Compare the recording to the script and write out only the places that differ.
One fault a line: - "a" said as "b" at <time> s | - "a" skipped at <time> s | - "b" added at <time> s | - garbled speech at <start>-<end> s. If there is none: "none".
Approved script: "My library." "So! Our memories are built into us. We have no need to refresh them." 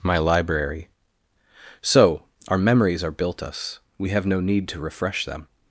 - "into" skipped at 3.4 s